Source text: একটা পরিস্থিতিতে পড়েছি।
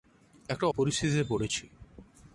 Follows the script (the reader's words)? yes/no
yes